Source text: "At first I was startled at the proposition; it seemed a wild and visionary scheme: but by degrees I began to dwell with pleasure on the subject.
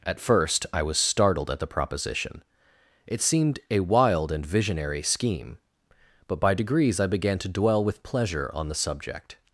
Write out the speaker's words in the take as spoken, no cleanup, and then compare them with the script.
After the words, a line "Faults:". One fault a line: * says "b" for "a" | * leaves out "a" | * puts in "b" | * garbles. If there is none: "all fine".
"At first I was startled at the proposition; it seemed a wild and visionary scheme: but by degrees I began to dwell with pleasure on the subject.
Faults:
all fine